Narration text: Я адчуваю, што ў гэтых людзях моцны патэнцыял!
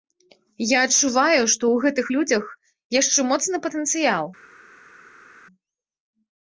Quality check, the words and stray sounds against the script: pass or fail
fail